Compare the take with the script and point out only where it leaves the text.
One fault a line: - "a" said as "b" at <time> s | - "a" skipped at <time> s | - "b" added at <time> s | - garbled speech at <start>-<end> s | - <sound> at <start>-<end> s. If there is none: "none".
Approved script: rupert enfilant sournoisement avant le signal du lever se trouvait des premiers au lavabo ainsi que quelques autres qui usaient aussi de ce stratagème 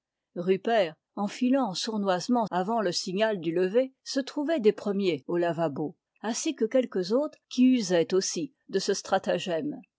none